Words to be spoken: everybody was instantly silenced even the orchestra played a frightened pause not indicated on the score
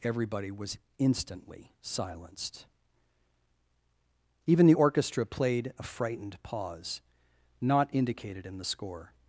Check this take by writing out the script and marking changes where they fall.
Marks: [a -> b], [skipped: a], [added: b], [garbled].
everybody was instantly silenced even the orchestra played a frightened pause not indicated [on -> in] the score